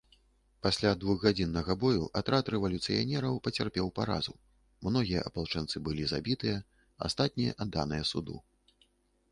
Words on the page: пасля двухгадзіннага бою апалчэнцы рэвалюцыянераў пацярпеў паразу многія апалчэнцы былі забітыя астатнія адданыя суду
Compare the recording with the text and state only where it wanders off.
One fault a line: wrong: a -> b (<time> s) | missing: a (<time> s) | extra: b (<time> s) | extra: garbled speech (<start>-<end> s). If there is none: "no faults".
wrong: апалчэнцы -> атрад (2.2 s)